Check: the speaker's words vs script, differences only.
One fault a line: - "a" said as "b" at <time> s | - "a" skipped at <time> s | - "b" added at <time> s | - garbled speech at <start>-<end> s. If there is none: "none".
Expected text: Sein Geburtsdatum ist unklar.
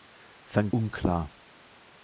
- "Geburtsdatum ist" skipped at 0.7 s